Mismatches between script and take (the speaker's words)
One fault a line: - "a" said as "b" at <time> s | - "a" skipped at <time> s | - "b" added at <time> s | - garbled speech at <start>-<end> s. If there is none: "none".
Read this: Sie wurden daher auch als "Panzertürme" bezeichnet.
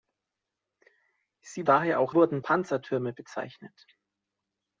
- "wurden" skipped at 1.7 s
- "als" said as "wurden" at 2.1 s